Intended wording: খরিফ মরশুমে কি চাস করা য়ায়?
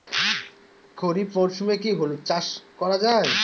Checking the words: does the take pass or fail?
fail